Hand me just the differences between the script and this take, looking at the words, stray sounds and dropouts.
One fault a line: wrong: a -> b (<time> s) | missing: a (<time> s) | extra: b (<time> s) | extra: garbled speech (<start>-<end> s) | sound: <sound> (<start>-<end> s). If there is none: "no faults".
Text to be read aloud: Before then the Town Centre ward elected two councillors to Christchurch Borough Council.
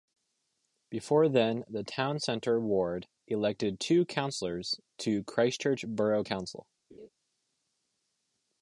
sound: laugh (6.9-7.1 s)